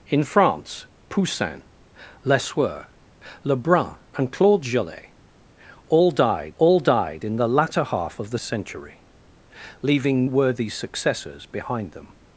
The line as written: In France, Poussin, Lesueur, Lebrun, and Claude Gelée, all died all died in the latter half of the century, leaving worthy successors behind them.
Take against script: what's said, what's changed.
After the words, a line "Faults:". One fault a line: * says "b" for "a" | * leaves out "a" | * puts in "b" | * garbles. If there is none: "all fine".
In France, Poussin, Lesueur, Lebrun, and Claude Gelée, all died all died in the latter half of the century, leaving worthy successors behind them.
Faults:
all fine